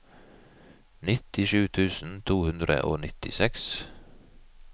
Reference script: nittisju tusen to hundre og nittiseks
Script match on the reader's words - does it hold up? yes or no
yes